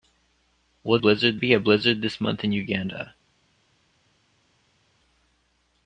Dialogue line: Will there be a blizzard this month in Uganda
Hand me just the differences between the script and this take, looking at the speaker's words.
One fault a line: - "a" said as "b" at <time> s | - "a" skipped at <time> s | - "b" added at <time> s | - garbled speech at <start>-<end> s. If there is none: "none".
- "there" said as "blizzard" at 1.0 s